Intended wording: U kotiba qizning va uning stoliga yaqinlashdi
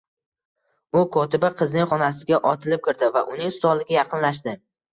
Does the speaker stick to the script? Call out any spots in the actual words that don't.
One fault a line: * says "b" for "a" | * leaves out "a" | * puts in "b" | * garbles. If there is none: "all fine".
* puts in "xonasiga otilib kirdi"